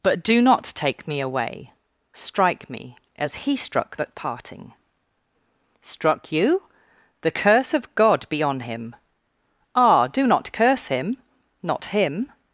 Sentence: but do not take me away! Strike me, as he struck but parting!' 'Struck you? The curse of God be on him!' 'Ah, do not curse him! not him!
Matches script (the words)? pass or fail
pass